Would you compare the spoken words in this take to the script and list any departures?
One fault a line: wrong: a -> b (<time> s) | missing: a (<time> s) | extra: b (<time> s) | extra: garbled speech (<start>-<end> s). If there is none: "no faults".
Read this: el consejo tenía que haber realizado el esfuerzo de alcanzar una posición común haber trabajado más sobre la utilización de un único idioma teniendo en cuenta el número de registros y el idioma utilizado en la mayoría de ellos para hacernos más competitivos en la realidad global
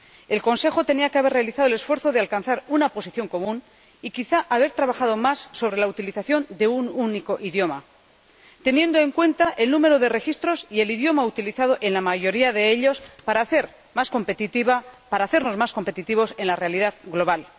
extra: y quizá (4.0 s)